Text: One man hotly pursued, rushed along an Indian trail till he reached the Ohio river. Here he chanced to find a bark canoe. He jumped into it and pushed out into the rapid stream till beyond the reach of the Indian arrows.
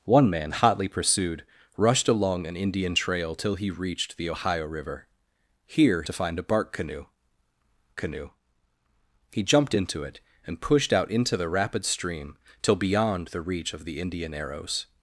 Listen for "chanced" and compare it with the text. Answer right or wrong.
wrong